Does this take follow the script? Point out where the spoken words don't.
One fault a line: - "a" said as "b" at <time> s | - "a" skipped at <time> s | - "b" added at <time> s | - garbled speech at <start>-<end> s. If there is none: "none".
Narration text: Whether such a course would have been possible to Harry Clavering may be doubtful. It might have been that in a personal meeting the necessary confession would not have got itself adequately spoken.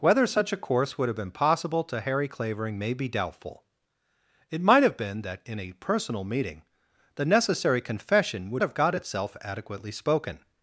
- "not" skipped at 8.6 s